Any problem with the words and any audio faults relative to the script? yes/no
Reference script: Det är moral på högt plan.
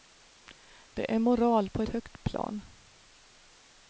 no